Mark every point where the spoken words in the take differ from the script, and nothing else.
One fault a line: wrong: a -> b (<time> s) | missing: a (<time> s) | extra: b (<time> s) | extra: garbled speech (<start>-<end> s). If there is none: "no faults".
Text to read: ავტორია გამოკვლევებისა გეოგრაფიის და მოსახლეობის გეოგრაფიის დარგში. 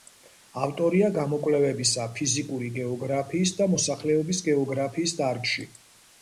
extra: ფიზიკური (2.2 s)